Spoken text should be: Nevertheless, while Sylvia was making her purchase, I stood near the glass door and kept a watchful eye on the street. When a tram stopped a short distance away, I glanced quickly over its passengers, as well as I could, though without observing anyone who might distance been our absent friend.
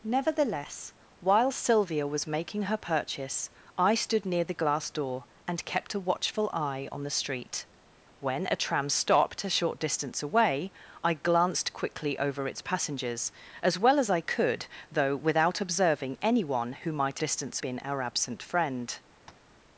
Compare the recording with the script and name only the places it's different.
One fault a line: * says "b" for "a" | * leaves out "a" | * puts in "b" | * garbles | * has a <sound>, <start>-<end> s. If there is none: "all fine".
* has a tap, 19.3-19.5 s